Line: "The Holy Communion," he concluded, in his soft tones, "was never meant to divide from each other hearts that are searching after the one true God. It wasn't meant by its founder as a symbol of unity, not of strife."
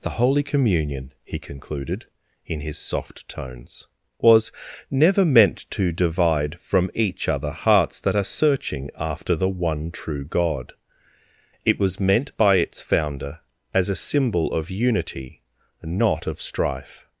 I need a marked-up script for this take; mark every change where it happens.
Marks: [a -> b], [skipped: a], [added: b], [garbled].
"The Holy Communion," he concluded, in his soft tones, "was never meant to divide from each other hearts that are searching after the one true God. It [wasn't -> was] meant by its founder as a symbol of unity, not of strife."